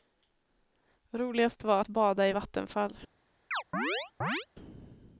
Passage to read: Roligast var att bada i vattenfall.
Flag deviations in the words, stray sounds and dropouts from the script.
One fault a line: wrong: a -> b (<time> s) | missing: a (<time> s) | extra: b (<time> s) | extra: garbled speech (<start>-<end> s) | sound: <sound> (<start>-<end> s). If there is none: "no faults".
sound: chirp (3.5-4.5 s)